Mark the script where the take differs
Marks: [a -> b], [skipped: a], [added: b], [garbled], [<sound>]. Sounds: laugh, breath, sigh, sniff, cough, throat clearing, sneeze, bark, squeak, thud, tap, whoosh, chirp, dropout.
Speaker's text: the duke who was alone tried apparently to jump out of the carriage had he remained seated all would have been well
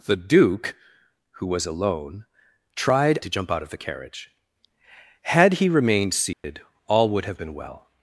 the duke who was alone tried [skipped: apparently] to jump out of the carriage had he remained seated [dropout] all would have been well